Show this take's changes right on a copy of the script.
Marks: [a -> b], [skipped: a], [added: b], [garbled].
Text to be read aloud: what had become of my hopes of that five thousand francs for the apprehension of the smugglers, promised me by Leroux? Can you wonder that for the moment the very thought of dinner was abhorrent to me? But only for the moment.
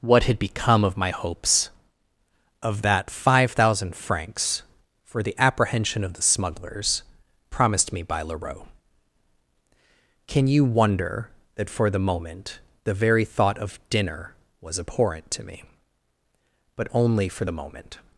what had become of my hopes of that five thousand francs for the apprehension of the smugglers, promised me by Leroux? Can you wonder that for the moment the very thought of dinner was abhorrent to me? But only for the moment.